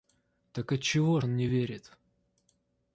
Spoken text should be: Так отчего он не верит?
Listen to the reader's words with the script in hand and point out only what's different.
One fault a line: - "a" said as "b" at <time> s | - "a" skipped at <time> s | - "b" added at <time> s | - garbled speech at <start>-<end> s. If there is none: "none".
none